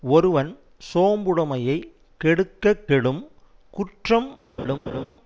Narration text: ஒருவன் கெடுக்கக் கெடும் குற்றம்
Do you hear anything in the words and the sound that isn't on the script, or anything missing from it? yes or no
yes